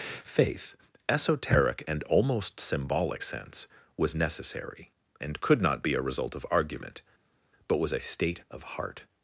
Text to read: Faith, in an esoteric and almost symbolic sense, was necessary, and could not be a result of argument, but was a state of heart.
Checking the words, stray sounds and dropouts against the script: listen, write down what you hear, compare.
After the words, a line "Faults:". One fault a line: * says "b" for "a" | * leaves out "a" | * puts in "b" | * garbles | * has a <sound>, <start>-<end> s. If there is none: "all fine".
Faith, esoteric and almost symbolic sense, was necessary, and could not be a result of argument, but was a state of heart.
Faults:
* leaves out "in an"